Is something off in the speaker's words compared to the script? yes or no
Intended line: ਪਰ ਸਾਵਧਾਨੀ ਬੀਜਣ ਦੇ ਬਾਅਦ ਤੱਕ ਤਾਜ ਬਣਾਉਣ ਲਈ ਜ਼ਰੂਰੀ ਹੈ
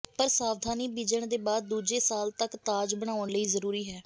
yes